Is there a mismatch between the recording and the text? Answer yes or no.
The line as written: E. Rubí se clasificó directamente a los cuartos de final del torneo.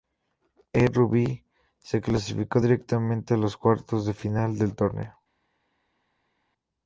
no